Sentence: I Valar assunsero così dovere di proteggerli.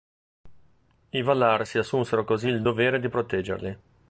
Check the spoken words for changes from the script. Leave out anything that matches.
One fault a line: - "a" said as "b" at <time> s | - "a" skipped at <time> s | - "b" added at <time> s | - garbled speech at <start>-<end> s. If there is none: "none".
- "si" added at 1.6 s
- "il" added at 2.5 s